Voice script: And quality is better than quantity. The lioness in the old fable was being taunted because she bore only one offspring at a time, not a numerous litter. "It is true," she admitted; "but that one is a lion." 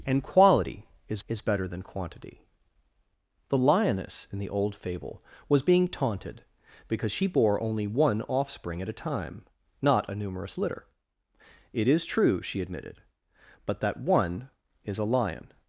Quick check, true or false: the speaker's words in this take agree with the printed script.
false